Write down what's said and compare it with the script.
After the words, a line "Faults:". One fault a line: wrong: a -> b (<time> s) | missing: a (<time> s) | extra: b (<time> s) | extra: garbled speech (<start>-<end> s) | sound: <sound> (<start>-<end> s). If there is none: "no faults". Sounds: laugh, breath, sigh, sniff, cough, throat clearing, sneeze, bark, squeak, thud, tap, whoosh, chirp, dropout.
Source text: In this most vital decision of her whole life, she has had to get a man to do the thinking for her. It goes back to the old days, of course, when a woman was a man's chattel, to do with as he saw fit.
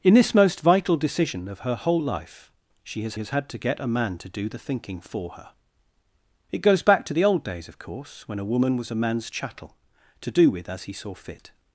In this most vital decision of her whole life, she has has had to get a man to do the thinking for her. It goes back to the old days, of course, when a woman was a man's chattel, to do with as he saw fit.
Faults:
extra: has (3.2 s)